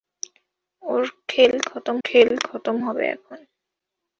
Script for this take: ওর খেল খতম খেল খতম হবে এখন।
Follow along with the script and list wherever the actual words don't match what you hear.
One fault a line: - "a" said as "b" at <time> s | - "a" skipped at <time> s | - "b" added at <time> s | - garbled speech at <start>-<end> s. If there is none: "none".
none